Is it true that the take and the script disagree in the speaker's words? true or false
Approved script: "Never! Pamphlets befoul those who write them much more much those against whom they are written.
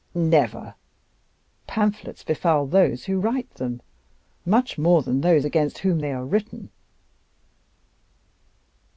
true